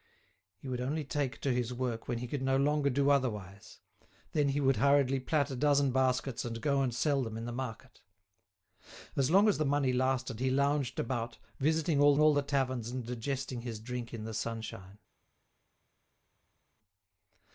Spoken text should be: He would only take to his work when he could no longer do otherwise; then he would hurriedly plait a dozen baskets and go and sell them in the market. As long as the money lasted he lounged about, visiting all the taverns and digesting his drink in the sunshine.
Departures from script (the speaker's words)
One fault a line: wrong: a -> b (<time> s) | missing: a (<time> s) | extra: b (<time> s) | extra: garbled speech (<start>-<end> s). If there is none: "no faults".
extra: all (12.2 s)